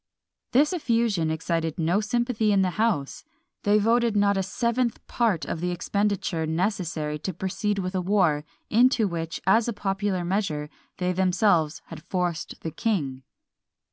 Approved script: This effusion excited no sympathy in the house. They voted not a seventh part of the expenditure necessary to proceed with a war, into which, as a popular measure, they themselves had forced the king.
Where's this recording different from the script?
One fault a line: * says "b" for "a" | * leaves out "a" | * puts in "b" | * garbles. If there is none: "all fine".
all fine